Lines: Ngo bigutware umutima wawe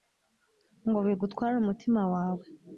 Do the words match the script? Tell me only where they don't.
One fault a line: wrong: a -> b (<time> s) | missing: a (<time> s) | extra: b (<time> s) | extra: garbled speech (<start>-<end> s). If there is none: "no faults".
no faults